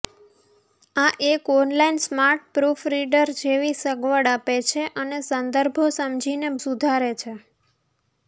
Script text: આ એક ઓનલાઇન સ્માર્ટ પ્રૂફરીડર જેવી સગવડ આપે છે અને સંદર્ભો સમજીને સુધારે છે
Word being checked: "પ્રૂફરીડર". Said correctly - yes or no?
yes